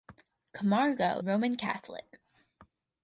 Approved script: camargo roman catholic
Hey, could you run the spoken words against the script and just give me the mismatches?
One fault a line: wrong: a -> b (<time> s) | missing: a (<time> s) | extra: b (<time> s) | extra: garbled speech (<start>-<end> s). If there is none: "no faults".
no faults